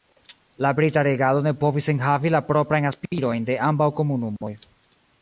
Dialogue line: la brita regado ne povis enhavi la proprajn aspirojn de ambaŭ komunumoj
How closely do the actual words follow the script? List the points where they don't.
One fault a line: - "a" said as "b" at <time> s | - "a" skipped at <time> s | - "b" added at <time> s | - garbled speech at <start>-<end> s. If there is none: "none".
none